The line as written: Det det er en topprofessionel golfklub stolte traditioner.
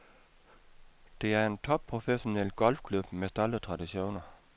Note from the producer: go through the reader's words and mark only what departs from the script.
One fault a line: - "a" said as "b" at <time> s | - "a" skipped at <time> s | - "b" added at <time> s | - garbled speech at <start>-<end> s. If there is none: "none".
- "det" skipped at 1.3 s
- "med" added at 3.1 s